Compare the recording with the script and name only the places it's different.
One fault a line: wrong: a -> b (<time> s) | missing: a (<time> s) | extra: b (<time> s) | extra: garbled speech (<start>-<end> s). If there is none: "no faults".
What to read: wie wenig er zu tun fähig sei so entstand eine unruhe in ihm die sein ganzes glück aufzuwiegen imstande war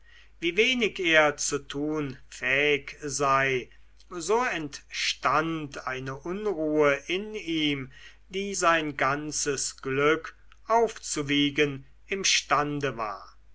no faults